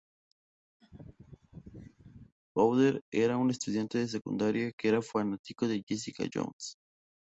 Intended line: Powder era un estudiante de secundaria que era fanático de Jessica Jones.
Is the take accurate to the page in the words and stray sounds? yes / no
no